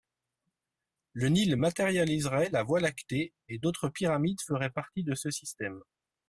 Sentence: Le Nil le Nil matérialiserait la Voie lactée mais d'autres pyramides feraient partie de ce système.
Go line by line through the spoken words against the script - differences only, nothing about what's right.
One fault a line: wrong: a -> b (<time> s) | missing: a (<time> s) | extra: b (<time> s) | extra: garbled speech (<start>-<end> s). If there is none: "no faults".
missing: le Nil (1.6 s)
wrong: mais -> et (3.5 s)